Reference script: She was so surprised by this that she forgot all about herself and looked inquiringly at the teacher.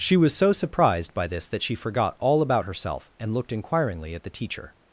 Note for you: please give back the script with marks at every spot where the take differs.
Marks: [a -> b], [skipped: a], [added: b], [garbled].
She was so surprised by this that she forgot all about herself and looked inquiringly at the teacher.